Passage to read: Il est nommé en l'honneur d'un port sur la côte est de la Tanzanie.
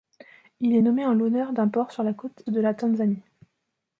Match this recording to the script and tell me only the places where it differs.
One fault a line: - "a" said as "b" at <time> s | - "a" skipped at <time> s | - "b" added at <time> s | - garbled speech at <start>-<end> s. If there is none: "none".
- "est" skipped at 2.4 s